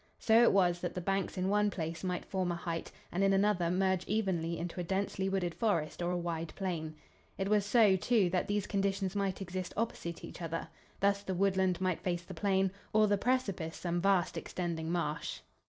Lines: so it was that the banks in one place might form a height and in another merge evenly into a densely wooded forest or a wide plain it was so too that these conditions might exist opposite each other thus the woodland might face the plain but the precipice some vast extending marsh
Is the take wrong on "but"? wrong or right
wrong